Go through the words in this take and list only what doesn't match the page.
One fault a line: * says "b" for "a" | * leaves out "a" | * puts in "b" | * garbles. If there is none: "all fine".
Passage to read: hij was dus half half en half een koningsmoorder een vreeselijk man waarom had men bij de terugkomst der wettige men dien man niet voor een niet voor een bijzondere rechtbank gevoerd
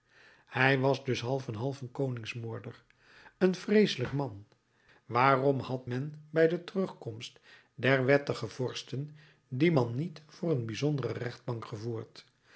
* leaves out "half"
* says "vorsten" for "men"
* leaves out "niet voor een"